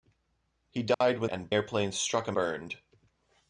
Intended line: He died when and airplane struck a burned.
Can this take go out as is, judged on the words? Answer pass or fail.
pass